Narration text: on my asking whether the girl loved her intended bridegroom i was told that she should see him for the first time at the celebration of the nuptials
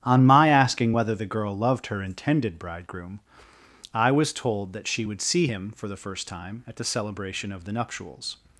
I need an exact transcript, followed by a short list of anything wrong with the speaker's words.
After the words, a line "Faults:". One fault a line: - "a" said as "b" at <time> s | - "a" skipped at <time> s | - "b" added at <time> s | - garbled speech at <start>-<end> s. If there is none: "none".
on my asking whether the girl loved her intended bridegroom i was told that she would see him for the first time at the celebration of the nuptials
Faults:
- "should" said as "would" at 5.0 s